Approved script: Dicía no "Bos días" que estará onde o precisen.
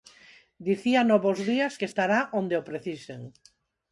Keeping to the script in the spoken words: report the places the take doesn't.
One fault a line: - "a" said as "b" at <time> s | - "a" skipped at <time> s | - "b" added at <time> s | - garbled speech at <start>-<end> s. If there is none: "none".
none